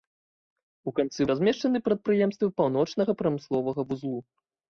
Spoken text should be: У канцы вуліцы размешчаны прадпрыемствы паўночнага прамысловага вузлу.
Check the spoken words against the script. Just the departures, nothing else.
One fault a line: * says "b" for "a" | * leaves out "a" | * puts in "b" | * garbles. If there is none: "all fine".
* leaves out "вуліцы"